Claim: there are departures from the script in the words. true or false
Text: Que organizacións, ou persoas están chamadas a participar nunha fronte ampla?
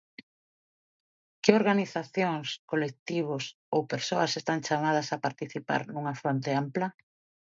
true